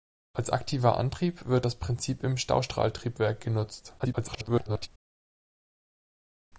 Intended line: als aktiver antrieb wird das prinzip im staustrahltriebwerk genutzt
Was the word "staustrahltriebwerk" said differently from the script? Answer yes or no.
no